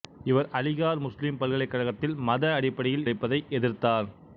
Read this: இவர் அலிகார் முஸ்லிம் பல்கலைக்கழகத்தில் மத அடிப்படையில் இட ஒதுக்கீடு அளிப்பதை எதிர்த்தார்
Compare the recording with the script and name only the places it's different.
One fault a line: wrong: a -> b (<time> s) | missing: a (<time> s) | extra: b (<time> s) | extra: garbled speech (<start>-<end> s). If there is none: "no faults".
missing: இட ஒதுக்கீடு (3.1 s)